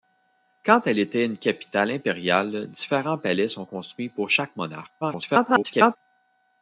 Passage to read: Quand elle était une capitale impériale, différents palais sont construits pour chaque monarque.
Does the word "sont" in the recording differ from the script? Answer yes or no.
no